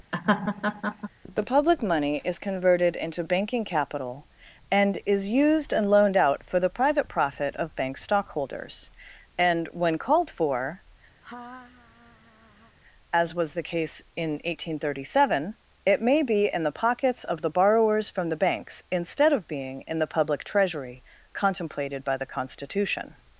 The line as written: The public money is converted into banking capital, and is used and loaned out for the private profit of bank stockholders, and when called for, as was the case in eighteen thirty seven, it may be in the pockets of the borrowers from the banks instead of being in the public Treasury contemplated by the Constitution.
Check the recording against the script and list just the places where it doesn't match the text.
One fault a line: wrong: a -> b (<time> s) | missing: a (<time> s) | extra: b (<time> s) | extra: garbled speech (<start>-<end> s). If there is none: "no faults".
no faults